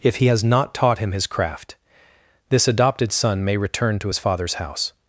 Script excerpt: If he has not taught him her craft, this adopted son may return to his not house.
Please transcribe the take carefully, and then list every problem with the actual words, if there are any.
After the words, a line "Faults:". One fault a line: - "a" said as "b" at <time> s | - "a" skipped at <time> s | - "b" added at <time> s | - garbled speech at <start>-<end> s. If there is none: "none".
If he has not taught him his craft, this adopted son may return to his father's house.
Faults:
- "her" said as "his" at 1.1 s
- "not" said as "father's" at 4.2 s